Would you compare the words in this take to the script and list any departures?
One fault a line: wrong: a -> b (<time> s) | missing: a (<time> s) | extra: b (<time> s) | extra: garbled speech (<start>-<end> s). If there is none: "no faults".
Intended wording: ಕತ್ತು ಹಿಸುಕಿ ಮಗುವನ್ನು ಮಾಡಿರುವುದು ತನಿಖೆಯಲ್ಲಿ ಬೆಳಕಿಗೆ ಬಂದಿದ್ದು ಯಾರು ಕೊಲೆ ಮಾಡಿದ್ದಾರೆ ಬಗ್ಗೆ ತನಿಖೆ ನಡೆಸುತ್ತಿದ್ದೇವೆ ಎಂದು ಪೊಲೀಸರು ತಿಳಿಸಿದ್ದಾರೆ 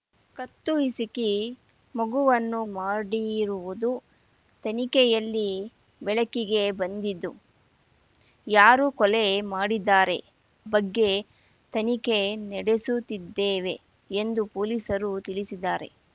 no faults